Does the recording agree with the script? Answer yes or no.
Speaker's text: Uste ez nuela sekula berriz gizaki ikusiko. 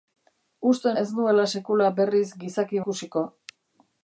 yes